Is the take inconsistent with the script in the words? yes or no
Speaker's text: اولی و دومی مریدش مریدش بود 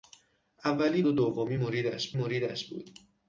no